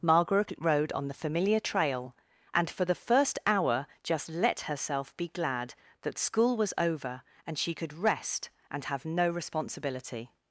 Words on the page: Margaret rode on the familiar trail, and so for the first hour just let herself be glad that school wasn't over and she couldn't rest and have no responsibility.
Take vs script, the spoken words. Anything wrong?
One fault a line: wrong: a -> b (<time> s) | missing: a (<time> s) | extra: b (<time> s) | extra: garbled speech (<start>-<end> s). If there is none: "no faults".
missing: so (2.7 s)
wrong: wasn't -> was (6.6 s)
wrong: couldn't -> could (7.7 s)